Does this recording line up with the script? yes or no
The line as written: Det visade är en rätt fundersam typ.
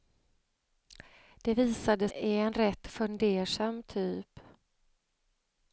yes